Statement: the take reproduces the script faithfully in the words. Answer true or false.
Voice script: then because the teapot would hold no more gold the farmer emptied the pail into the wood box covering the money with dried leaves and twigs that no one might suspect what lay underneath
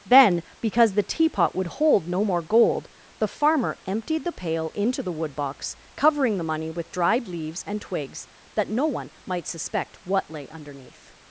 true